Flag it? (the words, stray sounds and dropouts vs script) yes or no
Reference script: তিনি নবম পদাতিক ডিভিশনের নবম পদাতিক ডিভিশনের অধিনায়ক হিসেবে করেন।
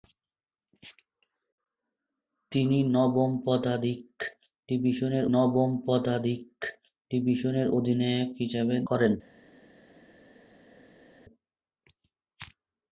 no